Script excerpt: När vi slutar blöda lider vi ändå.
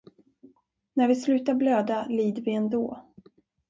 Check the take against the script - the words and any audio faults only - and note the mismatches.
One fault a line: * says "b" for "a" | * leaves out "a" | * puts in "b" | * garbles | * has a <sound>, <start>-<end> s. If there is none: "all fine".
all fine